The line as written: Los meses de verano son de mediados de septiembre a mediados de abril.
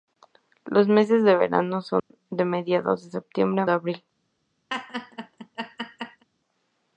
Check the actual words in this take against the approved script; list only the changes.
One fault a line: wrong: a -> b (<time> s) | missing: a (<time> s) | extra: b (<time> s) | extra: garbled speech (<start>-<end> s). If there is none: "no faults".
missing: mediados (3.7 s)